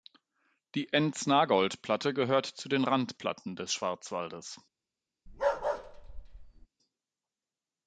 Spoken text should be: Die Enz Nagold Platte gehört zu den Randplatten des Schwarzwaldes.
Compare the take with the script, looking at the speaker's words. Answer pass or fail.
pass